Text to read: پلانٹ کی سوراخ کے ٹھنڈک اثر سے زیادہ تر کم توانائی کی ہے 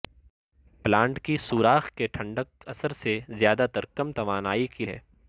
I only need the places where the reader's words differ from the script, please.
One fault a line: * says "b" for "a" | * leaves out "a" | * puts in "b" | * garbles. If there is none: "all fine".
all fine